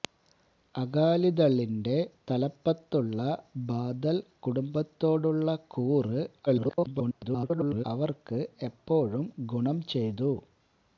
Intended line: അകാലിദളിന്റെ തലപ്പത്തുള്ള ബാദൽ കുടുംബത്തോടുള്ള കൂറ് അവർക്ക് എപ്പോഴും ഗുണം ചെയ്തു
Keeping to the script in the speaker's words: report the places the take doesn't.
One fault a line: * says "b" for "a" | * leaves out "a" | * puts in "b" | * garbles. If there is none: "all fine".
* garbles